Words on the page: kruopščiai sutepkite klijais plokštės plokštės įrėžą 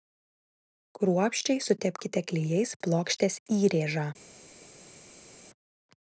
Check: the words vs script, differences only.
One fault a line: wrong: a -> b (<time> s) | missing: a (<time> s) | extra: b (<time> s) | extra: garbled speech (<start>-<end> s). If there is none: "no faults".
missing: plokštės (3.4 s)